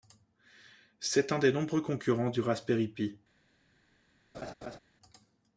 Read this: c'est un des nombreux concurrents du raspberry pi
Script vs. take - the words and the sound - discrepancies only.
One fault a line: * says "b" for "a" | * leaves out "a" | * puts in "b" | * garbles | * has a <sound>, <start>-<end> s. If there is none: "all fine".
* has a laugh, 4.3-4.8 s